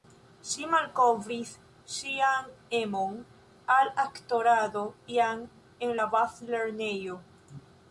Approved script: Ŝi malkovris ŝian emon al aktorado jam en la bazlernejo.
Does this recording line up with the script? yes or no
yes